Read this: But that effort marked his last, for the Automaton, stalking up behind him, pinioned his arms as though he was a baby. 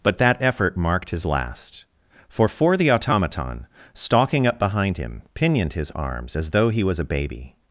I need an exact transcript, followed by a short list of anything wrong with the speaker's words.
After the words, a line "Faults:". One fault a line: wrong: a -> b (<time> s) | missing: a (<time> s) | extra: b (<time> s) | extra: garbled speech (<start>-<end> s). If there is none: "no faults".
But that effort marked his last, for for the Automaton, stalking up behind him, pinioned his arms as though he was a baby.
Faults:
extra: for (2.5 s)